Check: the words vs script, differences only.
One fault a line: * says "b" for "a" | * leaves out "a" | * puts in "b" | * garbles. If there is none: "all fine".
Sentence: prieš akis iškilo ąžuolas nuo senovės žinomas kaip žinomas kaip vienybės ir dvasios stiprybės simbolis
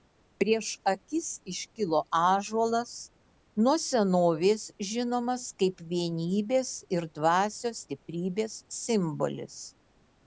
* leaves out "žinomas kaip"